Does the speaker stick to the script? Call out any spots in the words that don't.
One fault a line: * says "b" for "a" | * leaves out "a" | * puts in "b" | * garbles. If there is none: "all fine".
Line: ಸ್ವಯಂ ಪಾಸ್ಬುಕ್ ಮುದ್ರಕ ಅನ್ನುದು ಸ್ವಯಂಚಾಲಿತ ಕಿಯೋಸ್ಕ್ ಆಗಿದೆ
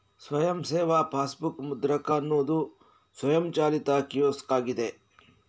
* puts in "ಸೇವಾ"